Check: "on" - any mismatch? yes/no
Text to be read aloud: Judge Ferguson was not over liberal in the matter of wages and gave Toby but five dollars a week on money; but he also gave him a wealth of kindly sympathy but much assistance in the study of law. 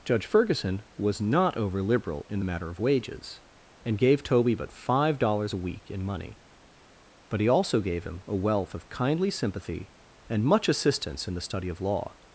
yes